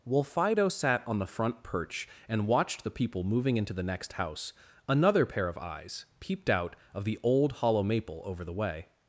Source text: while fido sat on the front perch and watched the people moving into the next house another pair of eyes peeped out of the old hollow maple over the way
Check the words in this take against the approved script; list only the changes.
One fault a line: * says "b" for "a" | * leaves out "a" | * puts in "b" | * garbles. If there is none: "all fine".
all fine